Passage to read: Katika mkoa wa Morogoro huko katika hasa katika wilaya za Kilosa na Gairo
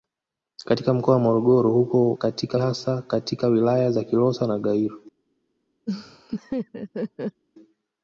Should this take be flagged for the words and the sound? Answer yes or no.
yes